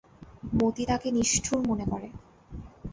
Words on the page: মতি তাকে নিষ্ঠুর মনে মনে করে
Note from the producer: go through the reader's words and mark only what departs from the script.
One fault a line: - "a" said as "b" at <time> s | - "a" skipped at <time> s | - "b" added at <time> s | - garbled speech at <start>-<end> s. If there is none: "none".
- "মনে" skipped at 1.9 s